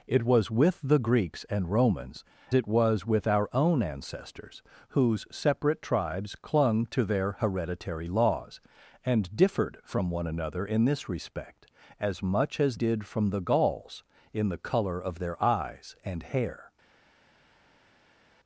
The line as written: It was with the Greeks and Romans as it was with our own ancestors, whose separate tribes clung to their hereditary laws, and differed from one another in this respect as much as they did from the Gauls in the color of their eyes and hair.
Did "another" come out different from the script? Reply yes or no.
no